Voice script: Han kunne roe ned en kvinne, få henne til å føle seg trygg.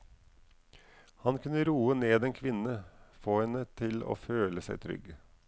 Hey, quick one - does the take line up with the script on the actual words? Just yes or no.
yes